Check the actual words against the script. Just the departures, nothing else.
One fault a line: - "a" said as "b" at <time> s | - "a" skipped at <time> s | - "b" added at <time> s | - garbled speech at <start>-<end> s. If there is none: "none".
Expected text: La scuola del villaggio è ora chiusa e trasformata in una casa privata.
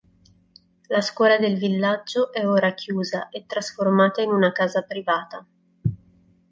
none